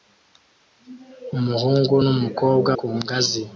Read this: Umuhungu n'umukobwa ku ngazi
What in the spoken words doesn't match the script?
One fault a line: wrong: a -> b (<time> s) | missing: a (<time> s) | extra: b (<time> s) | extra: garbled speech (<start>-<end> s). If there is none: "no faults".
no faults